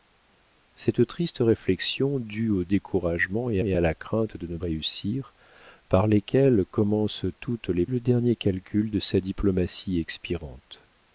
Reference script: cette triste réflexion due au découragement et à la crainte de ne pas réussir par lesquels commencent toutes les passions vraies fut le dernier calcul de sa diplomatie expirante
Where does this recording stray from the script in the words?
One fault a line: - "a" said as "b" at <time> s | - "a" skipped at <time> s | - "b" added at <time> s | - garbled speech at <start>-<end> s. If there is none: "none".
- "et" added at 3.6 s
- "pas" skipped at 4.6 s
- "passions vraies fut" skipped at 7.9 s